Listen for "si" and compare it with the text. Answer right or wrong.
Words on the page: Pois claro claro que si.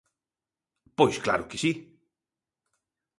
right